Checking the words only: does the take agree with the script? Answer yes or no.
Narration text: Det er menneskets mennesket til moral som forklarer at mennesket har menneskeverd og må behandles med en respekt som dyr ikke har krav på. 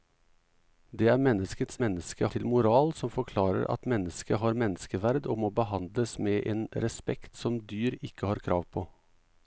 yes